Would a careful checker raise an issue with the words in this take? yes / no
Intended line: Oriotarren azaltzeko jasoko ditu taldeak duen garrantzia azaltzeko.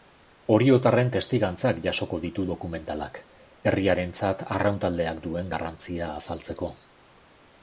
yes